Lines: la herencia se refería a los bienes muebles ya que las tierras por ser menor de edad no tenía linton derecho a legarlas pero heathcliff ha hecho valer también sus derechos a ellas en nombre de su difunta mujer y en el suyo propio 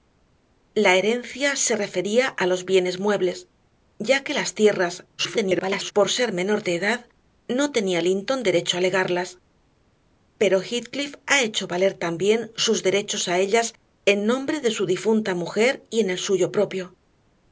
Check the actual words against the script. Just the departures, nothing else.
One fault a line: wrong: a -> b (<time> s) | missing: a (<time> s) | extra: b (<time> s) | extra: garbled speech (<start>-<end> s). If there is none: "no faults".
extra: garbled speech (5.2-5.9 s)